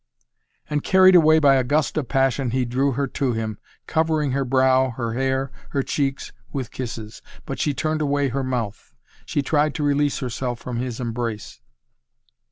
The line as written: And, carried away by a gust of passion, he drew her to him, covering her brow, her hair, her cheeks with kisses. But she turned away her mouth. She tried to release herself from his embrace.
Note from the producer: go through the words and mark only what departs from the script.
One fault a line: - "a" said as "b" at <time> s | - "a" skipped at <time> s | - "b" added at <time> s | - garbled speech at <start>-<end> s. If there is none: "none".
none